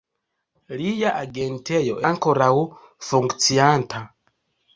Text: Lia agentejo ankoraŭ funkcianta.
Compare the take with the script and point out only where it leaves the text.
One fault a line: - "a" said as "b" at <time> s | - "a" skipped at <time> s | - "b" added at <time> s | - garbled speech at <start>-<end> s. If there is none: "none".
none